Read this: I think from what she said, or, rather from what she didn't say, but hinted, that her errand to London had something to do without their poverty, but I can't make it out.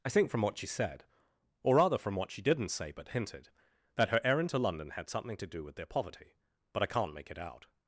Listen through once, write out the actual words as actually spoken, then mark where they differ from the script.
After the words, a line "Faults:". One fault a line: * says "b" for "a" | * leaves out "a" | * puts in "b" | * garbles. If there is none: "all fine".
I think from what she said, or, rather from what she didn't say, but hinted, that her errand to London had something to do with their poverty, but I can't make it out.
Faults:
* says "with" for "without"